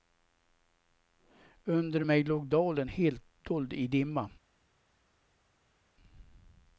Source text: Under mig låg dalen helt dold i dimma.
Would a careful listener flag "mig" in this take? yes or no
no